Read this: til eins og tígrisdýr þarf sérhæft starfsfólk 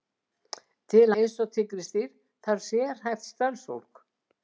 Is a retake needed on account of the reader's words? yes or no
no